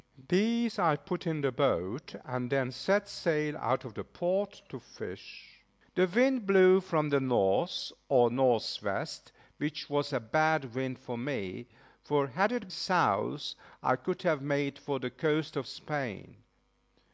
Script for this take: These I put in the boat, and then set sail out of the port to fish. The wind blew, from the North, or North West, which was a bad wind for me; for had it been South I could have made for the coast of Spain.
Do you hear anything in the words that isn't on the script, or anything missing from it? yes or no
yes